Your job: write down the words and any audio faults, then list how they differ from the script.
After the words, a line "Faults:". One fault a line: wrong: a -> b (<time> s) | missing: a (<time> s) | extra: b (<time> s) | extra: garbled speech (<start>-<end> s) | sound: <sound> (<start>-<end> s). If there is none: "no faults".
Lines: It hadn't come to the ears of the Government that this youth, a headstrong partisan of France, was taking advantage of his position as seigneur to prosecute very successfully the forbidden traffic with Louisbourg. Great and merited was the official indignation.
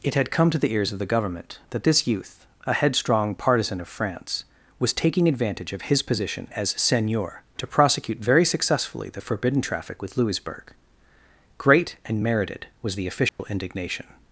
It had come to the ears of the Government that this youth, a headstrong partisan of France, was taking advantage of his position as seigneur to prosecute very successfully the forbidden traffic with Louisbourg. Great and merited was the official indignation.
Faults:
wrong: hadn't -> had (0.1 s)
sound: dropout (13.3-13.4 s)